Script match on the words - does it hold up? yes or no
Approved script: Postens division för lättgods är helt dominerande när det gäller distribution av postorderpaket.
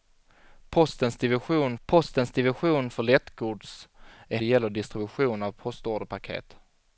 no